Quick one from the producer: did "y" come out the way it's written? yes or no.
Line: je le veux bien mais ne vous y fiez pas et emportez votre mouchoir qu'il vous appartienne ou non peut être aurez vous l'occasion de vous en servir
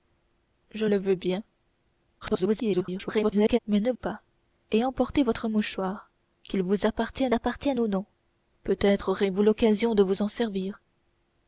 no